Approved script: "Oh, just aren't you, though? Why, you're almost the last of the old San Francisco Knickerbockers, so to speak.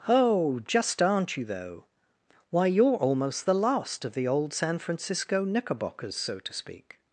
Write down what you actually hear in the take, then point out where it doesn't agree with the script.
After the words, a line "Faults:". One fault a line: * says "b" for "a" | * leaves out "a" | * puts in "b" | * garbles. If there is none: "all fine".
"Oh, just aren't you, though? Why, you're almost the last of the old San Francisco Knickerbockers, so to speak.
Faults:
all fine